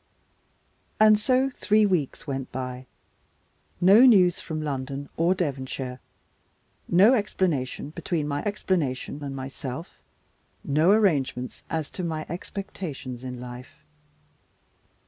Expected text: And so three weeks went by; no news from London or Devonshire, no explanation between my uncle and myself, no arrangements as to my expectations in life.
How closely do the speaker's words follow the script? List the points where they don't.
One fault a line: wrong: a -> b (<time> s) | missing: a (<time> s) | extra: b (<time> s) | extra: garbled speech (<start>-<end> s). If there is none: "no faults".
wrong: uncle -> explanation (8.4 s)